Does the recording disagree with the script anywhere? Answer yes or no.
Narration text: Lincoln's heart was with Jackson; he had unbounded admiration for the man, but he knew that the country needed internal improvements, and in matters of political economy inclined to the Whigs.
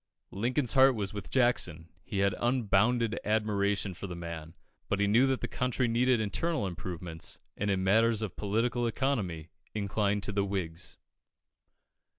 no